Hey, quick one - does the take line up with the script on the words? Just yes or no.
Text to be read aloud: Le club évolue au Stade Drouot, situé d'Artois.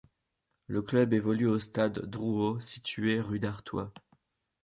no